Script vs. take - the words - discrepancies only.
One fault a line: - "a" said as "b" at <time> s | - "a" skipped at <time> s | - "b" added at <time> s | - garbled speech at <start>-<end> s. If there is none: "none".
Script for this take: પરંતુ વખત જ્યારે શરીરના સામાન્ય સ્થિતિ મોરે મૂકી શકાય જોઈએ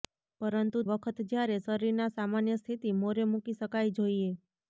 none